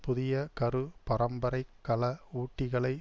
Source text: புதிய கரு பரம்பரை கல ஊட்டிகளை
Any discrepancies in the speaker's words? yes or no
no